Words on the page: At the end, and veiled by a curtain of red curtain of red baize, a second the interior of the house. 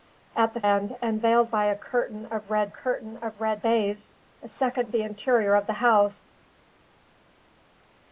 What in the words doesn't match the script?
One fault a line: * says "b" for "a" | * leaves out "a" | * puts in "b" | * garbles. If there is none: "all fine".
all fine